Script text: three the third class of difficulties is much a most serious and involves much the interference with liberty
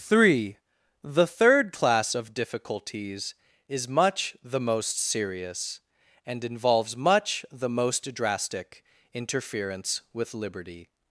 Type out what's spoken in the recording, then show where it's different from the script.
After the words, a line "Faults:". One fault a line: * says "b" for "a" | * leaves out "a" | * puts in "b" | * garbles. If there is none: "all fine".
three the third class of difficulties is much the most serious and involves much the most drastic interference with liberty
Faults:
* says "the" for "a"
* puts in "most drastic"